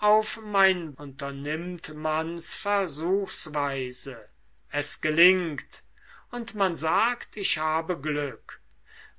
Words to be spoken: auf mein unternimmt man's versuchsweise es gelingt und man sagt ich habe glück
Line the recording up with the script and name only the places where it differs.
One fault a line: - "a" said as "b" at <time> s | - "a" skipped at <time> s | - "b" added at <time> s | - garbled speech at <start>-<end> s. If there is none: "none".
none